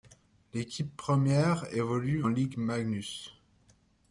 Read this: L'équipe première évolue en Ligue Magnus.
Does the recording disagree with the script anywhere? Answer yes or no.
yes